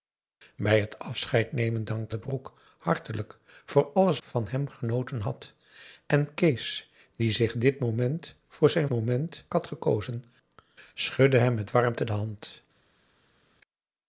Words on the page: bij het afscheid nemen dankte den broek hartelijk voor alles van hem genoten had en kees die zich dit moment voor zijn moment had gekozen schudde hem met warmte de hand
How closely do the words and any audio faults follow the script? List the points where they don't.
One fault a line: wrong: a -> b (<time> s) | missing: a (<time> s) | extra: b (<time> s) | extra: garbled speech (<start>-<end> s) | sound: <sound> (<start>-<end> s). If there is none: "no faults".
no faults